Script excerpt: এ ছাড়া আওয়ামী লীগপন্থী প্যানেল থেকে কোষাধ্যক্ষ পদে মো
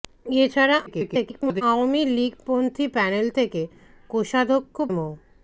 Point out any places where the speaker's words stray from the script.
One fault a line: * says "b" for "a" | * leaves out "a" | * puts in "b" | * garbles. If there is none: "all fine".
* garbles
* leaves out "পদে"